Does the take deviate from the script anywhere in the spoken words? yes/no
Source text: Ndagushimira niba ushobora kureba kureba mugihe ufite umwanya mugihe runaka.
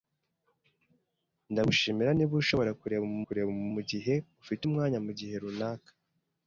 no